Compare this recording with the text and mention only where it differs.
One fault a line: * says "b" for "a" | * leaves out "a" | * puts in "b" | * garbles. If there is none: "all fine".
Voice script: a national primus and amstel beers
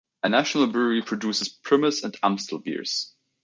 * puts in "brewery produces"